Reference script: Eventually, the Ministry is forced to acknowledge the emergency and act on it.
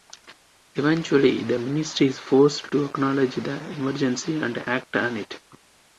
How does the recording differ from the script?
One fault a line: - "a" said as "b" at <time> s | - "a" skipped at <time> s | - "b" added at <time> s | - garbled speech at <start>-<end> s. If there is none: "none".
none